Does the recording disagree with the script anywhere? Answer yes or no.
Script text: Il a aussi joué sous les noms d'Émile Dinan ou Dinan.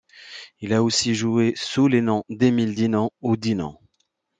no